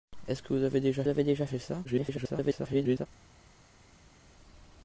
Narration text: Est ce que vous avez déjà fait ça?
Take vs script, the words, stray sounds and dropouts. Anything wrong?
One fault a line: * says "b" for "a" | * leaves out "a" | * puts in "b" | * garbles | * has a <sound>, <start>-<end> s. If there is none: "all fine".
* puts in "avez déjà"
* garbles